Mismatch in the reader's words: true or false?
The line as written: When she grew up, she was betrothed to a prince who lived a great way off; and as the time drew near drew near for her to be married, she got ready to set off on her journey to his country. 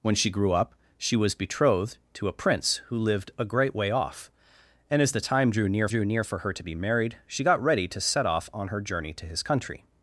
false